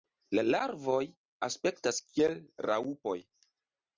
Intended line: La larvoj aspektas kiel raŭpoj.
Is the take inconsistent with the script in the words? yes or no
no